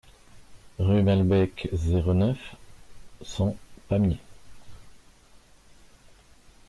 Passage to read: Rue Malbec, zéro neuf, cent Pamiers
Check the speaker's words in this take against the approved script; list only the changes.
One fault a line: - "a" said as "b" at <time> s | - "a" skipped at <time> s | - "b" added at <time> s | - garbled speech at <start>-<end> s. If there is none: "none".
none